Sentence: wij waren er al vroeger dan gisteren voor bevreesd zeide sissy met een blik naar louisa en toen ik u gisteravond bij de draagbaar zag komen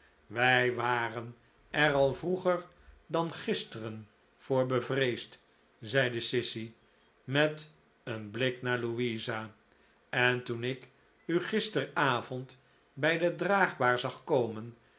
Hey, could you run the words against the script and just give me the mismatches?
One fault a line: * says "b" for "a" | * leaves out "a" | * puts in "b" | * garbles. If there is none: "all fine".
all fine